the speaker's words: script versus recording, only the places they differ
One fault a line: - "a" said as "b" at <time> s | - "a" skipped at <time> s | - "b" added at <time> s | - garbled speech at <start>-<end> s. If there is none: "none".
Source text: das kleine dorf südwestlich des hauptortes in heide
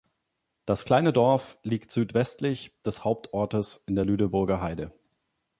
- "liegt" added at 1.6 s
- "der lüneburger" added at 3.9 s